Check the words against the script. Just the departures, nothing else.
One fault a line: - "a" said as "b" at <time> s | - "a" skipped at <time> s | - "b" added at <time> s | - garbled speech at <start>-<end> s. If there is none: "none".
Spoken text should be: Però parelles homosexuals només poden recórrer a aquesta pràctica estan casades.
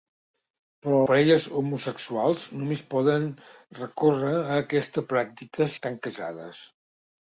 none